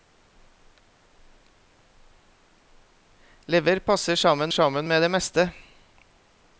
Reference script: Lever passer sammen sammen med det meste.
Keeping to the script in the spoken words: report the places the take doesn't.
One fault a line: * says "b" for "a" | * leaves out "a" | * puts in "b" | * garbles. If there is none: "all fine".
all fine